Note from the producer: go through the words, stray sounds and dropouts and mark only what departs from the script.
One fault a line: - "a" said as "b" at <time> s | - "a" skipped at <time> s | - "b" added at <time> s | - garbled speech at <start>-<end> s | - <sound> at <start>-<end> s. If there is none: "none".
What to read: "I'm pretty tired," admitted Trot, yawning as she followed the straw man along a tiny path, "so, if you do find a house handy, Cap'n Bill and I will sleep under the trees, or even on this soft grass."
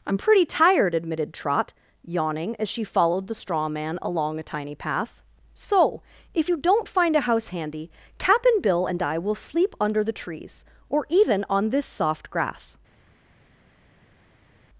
- "do" said as "don't" at 6.6 s